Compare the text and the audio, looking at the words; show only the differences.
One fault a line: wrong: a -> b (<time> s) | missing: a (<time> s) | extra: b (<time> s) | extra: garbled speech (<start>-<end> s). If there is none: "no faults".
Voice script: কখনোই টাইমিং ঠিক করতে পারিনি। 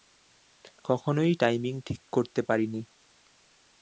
no faults